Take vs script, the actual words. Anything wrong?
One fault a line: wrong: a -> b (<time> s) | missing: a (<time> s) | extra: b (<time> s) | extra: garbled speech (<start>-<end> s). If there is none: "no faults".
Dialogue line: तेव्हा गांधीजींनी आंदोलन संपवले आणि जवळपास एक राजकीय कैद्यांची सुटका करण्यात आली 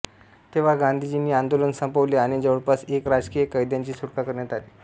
no faults